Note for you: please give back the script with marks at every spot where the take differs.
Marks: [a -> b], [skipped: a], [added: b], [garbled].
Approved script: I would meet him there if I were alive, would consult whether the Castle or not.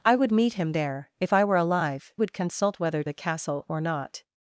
I would meet him there if I were alive, would consult whether the Castle or not.